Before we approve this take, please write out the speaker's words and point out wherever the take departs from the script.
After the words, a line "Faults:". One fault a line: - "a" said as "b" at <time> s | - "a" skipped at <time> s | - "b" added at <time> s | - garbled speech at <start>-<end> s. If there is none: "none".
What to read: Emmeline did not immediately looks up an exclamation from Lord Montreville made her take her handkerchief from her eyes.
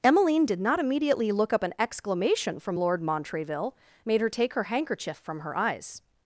Emmeline did not immediately look up an exclamation from Lord Montreville made her take her handkerchief from her eyes.
Faults:
- "looks" said as "look" at 1.3 s